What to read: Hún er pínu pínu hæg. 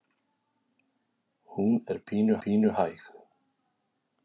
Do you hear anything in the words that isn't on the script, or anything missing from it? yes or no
no